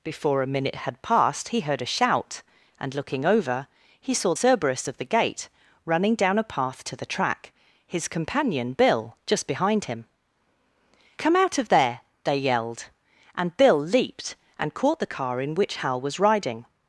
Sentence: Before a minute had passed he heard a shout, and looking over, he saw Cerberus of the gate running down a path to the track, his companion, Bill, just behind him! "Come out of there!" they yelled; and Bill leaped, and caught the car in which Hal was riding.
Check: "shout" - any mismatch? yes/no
no